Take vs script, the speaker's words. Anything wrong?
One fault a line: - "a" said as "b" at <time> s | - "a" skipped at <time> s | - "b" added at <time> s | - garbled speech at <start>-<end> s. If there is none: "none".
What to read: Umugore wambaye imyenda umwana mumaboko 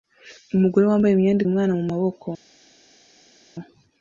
none